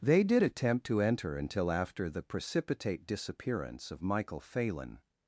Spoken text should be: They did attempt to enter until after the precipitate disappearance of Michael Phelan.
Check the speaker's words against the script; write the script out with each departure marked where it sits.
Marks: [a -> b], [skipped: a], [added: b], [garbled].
They did attempt to enter until after the precipitate disappearance of Michael Phelan.